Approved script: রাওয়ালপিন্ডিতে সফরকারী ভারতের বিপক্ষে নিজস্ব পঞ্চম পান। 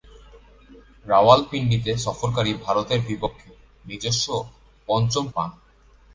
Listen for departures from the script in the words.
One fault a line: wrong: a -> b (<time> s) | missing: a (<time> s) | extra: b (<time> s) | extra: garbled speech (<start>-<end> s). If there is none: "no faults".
no faults